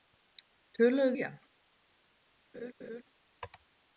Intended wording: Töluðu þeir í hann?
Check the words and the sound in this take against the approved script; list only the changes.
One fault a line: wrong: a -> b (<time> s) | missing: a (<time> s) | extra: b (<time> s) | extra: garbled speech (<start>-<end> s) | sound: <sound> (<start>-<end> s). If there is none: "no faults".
missing: þeir (1.1 s)
sound: laugh (2.5-3.0 s)